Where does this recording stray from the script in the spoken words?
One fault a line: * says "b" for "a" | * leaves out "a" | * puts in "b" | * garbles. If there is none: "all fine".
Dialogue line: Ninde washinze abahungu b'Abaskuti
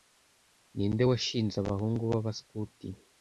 all fine